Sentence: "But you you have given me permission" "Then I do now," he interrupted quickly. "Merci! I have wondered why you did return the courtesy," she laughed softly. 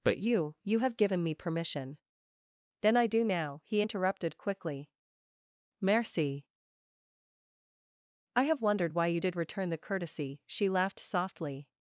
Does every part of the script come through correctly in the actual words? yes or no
yes